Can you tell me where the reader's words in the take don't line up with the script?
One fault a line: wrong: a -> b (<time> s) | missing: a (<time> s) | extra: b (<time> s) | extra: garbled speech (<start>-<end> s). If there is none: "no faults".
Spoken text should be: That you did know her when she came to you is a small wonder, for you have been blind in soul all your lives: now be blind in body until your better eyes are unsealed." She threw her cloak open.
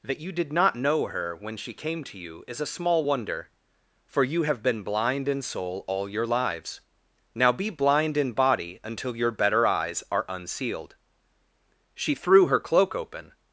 extra: not (0.5 s)